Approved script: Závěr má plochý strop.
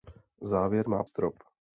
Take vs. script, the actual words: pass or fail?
fail